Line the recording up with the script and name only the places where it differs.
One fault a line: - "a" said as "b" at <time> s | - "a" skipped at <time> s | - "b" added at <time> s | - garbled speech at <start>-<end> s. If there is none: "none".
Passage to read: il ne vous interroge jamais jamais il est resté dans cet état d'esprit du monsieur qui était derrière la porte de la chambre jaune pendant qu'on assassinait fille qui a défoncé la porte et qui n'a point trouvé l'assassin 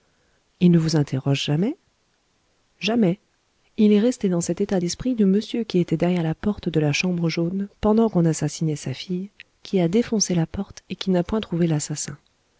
- "sa" added at 8.8 s